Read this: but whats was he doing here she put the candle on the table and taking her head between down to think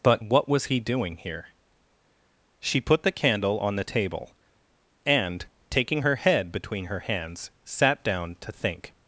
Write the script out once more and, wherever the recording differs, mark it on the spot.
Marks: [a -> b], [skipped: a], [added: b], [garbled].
but [whats -> what] was he doing here she put the candle on the table and taking her head between [added: her hands sat] down to think